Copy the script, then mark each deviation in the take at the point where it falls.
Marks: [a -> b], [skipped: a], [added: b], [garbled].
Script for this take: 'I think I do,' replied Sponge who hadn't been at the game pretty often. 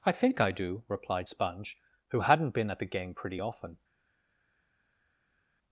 'I think I do,' replied Sponge who hadn't been at the game pretty often.